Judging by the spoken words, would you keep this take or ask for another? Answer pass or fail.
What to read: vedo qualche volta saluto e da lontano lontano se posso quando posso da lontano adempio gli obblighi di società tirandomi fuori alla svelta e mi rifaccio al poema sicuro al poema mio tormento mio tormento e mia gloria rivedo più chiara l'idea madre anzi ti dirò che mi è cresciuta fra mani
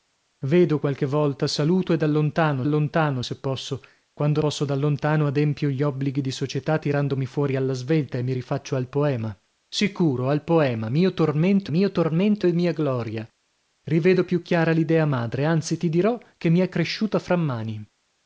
pass